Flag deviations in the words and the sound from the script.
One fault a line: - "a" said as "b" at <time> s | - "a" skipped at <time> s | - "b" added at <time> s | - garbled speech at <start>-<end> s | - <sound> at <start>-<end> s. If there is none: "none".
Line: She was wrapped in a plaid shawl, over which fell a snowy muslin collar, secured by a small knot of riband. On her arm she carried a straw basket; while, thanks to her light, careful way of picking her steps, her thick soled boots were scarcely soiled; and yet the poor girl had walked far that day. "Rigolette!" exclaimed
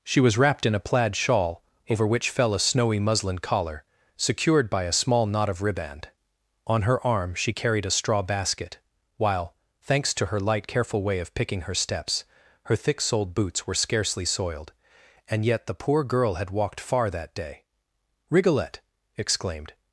none